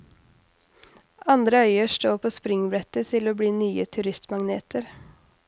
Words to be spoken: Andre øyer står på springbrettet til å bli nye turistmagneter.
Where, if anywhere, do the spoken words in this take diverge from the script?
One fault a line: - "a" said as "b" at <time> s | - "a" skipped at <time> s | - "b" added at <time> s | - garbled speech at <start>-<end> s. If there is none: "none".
none